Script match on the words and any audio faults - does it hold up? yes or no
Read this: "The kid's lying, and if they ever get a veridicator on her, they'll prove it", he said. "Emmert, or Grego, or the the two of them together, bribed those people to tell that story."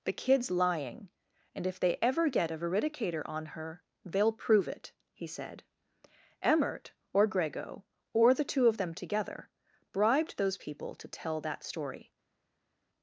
no